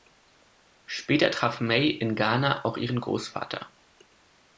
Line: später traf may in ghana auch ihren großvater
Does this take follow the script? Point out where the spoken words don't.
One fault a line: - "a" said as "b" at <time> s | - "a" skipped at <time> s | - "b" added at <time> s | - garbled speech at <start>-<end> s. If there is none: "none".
none